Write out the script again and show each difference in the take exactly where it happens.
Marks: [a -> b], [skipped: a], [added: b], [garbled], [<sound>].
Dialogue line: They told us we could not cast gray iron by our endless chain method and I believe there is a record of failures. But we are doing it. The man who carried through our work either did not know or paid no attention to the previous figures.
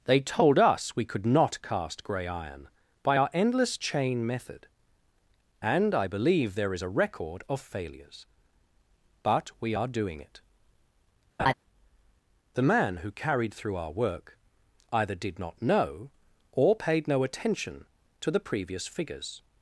They told us we could not cast gray iron by our endless chain method and I believe there is a record of failures. But we are doing it. [laugh] The man who carried through our work either did not know or paid no attention to the previous figures.